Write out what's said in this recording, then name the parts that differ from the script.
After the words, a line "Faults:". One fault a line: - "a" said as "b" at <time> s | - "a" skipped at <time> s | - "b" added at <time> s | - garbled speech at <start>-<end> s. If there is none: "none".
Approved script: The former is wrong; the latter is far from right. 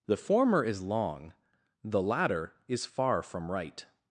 The former is long; the latter is far from right.
Faults:
- "wrong" said as "long" at 0.8 s